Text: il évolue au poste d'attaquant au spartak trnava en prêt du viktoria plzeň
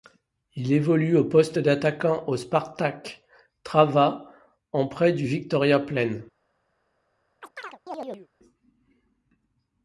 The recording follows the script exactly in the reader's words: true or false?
true